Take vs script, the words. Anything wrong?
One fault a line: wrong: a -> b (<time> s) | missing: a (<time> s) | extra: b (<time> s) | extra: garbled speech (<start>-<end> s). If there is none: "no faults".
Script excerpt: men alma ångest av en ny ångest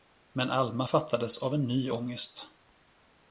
wrong: ångest -> fattades (0.8 s)